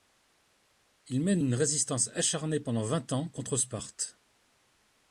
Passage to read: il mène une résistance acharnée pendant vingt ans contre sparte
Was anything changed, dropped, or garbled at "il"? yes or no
no